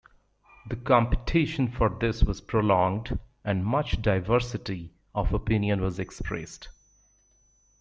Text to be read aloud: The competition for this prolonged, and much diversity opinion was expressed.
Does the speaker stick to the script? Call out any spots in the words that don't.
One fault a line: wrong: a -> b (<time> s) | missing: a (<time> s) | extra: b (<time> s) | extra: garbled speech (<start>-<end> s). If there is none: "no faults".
extra: was (2.2 s)
extra: of (5.1 s)